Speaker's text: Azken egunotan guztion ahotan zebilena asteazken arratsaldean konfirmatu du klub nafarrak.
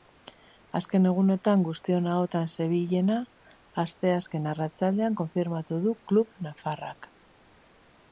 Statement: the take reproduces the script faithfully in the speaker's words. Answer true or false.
true